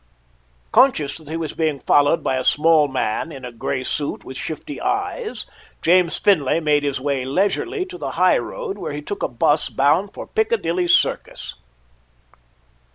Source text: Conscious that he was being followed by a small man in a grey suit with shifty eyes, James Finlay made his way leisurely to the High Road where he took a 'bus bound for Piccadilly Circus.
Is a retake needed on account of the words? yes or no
no